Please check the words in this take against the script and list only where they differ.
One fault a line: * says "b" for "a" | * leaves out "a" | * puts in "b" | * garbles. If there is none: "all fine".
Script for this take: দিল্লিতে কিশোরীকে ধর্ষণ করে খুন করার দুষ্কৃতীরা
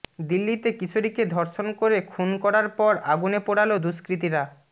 * puts in "পর আগুনে পোড়াল"